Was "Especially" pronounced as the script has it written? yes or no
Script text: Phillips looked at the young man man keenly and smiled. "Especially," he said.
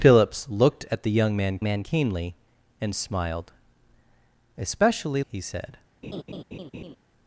yes